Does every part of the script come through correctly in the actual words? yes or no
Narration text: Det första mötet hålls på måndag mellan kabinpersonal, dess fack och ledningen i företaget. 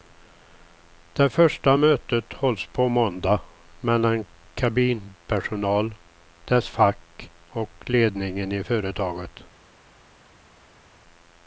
yes